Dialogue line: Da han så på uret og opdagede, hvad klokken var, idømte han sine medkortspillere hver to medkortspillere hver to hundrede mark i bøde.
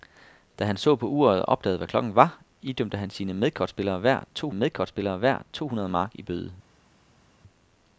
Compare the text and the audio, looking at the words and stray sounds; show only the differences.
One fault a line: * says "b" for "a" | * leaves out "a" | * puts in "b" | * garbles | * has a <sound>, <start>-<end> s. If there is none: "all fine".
all fine